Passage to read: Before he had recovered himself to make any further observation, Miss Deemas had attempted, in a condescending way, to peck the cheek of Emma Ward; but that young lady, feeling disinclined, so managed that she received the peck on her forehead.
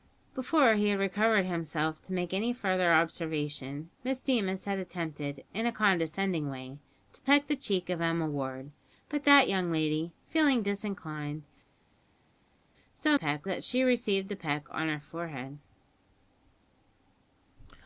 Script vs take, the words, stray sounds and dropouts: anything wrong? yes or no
yes